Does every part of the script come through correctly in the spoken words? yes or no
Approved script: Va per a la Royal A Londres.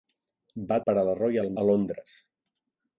yes